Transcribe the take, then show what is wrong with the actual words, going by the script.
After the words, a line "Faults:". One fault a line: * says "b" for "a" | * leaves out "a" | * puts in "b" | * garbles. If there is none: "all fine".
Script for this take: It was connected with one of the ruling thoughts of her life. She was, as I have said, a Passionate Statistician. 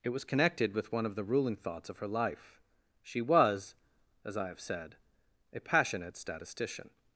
It was connected with one of the ruling thoughts of her life. She was, as I have said, a Passionate Statistician.
Faults:
all fine